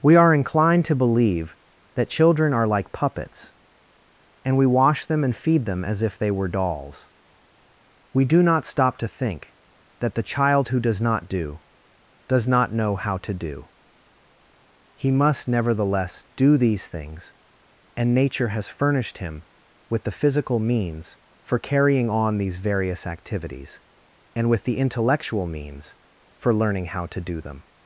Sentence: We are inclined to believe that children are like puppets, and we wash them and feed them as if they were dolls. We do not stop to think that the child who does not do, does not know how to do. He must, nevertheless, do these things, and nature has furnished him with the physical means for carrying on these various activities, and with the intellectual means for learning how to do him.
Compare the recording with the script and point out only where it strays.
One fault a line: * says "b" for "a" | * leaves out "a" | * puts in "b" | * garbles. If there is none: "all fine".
* says "them" for "him"